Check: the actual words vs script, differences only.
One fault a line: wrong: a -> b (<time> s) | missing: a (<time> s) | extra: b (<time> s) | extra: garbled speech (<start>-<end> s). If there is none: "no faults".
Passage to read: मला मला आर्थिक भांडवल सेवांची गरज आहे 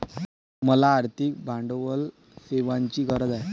missing: मला (0.9 s)